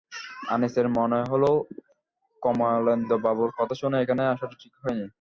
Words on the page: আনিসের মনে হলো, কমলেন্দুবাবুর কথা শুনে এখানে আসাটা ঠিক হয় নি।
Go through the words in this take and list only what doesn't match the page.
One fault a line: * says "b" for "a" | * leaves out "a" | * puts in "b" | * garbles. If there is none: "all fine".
all fine